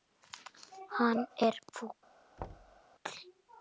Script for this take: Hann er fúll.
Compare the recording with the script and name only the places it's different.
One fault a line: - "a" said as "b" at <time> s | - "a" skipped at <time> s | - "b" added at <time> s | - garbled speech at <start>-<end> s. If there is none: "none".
none